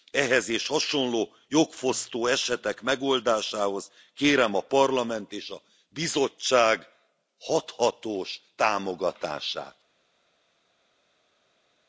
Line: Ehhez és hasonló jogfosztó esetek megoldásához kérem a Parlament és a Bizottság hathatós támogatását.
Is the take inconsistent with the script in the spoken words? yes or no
no